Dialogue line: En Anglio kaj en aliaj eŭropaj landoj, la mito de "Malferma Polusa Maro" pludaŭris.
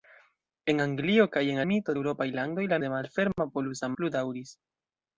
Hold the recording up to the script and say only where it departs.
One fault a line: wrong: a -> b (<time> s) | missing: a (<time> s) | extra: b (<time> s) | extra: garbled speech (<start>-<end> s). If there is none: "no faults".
wrong: aliaj -> mito (1.7 s)
missing: mito (2.8 s)
missing: Maro (3.9 s)